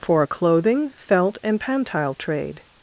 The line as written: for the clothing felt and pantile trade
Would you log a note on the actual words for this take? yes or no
yes